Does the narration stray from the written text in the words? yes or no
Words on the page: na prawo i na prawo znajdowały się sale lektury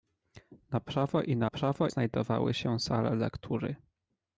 no